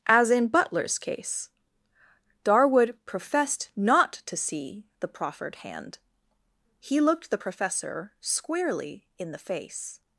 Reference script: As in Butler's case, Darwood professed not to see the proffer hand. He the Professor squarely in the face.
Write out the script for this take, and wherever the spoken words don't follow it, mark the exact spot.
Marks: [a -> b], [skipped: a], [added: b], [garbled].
As in Butler's case, Darwood professed not to see the [proffer -> proffered] hand. He [added: looked] the Professor squarely in the face.